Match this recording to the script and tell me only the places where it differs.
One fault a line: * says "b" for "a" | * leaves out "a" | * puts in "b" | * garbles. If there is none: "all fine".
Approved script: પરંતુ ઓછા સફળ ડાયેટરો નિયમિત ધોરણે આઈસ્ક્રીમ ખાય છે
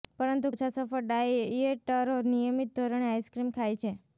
all fine